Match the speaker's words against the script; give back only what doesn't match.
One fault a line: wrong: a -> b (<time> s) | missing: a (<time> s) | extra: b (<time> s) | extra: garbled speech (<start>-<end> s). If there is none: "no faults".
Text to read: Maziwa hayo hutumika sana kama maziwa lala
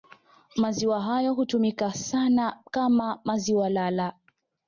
no faults